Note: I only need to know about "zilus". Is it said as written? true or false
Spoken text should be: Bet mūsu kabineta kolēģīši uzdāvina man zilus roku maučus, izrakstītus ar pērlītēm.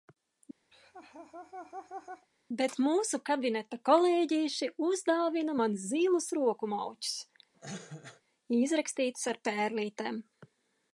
true